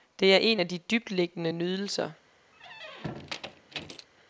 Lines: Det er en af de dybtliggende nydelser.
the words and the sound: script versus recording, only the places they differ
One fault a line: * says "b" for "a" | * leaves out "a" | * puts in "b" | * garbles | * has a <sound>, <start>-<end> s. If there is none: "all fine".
* has a squeak, 2.5-4.1 s